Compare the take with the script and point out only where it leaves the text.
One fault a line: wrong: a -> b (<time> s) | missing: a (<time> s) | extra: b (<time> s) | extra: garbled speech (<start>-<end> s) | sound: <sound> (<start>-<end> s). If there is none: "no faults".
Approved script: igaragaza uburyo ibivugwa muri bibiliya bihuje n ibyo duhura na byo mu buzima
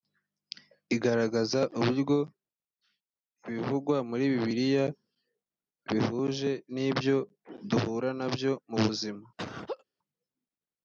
sound: laugh (9.4-9.8 s)